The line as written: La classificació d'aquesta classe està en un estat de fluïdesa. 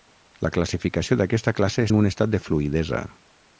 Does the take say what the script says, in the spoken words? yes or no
no